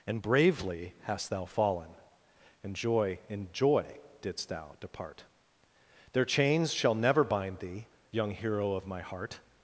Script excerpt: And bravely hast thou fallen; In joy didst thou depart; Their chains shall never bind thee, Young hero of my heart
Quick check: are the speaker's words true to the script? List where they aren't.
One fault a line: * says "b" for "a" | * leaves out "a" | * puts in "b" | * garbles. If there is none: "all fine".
* puts in "and joy"